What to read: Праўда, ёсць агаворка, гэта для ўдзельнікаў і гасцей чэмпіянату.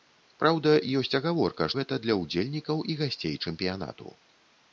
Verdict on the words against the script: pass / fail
pass